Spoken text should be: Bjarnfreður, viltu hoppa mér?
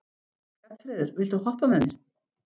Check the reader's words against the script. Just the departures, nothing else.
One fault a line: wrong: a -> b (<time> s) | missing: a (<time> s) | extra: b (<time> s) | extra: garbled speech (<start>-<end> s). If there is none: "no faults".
extra: með (1.7 s)